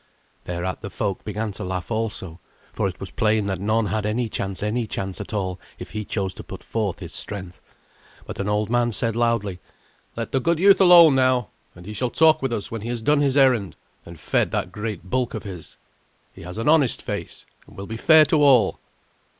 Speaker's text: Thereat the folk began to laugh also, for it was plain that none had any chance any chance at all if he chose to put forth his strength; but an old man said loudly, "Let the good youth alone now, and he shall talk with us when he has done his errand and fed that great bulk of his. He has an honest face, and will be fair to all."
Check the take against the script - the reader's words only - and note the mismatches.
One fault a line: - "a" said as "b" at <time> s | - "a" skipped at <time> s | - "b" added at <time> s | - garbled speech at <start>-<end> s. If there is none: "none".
none